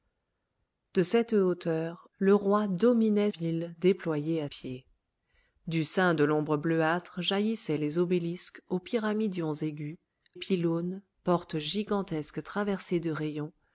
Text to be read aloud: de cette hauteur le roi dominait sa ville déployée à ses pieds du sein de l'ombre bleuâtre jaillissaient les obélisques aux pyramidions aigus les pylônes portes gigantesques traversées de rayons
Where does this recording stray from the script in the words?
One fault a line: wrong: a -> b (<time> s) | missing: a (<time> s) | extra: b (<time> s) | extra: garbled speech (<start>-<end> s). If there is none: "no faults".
missing: sa (3.3 s)
missing: ses (4.5 s)
missing: les (10.0 s)